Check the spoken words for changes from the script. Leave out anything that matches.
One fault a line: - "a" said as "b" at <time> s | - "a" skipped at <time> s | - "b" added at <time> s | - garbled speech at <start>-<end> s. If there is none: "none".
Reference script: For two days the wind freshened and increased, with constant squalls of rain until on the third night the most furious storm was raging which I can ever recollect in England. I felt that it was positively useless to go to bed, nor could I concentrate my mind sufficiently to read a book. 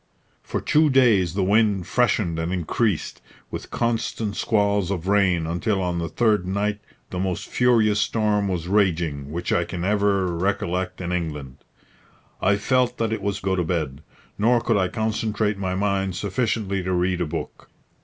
- "positively useless to" skipped at 13.4 s